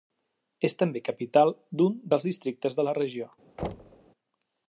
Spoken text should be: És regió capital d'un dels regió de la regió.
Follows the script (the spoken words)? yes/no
no